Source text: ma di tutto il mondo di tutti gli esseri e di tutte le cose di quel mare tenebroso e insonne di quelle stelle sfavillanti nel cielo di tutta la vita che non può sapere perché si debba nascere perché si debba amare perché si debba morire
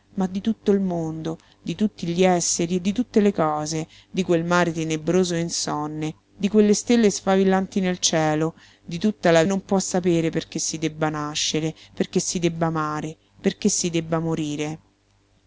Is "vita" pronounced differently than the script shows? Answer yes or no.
yes